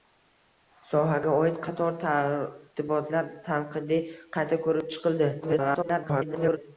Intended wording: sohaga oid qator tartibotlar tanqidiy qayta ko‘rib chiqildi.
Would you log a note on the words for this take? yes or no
yes